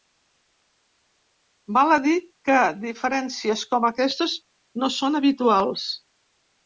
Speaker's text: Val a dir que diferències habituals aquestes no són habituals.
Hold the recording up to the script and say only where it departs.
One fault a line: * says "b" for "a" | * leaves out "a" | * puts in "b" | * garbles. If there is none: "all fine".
* says "com" for "habituals"